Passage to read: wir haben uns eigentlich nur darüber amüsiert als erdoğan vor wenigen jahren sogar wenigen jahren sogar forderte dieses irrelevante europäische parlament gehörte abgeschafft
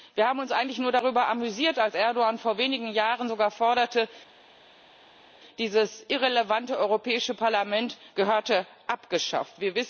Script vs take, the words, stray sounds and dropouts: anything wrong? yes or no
yes